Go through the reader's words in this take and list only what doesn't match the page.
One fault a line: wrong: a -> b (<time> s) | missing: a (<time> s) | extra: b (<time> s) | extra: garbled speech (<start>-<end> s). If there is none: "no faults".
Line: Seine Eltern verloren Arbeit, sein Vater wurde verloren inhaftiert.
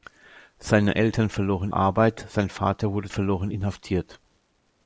no faults